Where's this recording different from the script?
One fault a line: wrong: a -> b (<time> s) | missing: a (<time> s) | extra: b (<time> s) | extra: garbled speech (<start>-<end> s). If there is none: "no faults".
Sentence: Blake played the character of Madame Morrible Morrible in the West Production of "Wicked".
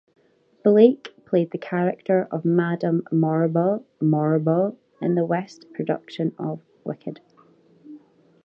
no faults